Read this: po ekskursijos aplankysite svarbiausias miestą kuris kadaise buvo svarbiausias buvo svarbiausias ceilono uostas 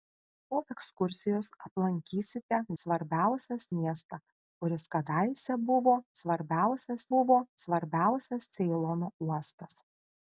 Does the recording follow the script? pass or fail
pass